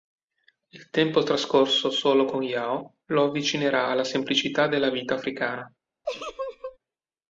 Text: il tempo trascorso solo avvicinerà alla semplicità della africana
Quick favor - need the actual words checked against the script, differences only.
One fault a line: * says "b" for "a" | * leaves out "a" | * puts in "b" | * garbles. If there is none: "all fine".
* puts in "con yao lo"
* puts in "vita"